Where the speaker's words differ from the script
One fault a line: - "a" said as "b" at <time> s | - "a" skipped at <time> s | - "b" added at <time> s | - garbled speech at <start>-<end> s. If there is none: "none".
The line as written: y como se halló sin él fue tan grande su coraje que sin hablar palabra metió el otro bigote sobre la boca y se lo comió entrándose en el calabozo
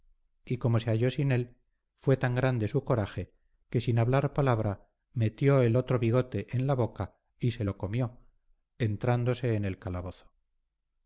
- "sobre" said as "en" at 6.5 s